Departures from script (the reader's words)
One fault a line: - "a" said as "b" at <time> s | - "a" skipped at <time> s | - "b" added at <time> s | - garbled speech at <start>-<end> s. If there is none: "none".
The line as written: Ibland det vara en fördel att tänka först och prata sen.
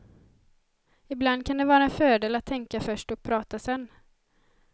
- "kan" added at 1.4 s